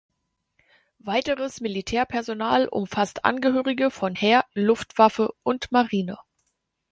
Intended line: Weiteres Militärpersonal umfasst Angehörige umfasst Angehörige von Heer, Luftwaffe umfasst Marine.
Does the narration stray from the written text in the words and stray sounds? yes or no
yes